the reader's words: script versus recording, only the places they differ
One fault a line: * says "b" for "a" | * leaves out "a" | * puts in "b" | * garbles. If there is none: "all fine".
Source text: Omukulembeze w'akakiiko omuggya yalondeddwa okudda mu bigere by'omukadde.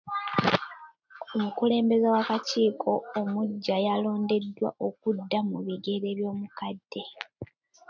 all fine